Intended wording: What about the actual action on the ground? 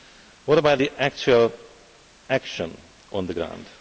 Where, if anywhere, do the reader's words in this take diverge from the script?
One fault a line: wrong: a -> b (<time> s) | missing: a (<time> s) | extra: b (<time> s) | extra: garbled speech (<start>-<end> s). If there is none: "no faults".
no faults